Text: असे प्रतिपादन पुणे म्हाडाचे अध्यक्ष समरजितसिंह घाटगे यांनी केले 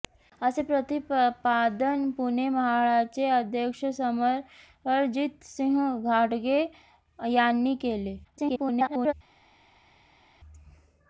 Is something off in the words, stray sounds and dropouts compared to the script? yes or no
yes